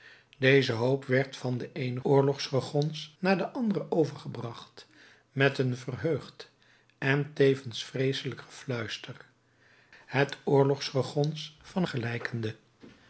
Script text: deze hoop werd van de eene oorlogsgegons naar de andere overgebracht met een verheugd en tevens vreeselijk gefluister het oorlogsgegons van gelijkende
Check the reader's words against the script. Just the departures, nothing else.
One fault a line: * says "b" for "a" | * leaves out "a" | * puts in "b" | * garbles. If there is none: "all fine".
all fine